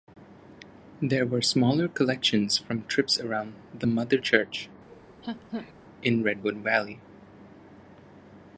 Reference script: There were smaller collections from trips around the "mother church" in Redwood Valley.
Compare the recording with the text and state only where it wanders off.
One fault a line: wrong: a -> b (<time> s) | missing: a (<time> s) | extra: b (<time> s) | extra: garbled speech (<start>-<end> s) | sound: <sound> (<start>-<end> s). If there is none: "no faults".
sound: laugh (4.9-5.7 s)